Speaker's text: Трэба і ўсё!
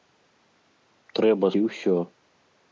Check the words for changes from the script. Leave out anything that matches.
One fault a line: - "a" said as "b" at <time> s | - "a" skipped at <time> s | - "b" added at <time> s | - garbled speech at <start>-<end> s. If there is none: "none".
none